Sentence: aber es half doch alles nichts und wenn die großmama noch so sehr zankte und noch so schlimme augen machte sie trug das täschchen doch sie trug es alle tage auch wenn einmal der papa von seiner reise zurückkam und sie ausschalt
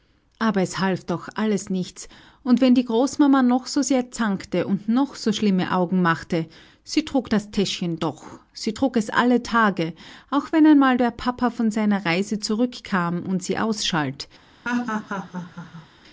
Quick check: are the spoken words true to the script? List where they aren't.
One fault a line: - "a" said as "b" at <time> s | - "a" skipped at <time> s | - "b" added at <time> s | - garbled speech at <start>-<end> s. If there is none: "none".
none